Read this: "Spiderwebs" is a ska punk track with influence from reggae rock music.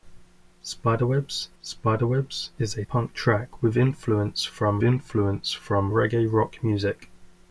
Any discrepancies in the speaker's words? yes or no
yes